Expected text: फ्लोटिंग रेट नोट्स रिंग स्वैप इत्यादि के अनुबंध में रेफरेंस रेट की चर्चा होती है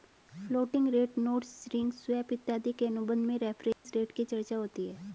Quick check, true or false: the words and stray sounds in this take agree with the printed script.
false